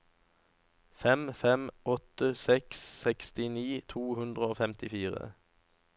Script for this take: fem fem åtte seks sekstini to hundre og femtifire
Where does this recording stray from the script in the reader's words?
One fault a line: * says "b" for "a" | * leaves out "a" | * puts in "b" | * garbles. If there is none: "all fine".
all fine